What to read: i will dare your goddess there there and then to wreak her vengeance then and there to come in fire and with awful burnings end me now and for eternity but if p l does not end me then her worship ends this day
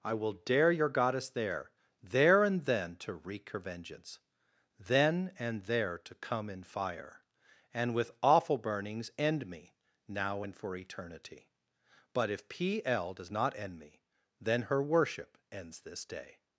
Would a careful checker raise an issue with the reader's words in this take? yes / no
no